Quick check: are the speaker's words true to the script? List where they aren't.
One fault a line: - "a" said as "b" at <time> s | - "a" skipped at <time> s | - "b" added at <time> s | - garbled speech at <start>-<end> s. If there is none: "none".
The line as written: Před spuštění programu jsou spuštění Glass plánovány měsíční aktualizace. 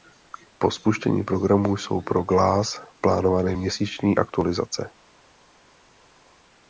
- "Před" said as "Po" at 0.6 s
- "spuštění" said as "pro" at 2.0 s